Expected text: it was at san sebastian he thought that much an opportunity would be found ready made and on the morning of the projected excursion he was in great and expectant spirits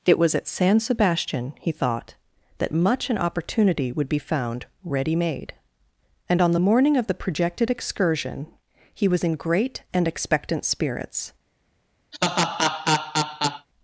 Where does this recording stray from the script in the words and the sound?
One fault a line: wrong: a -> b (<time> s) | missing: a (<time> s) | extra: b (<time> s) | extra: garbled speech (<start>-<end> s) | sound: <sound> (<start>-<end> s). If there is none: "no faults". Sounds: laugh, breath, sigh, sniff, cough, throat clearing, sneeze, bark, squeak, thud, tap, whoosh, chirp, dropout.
sound: laugh (12.1-13.7 s)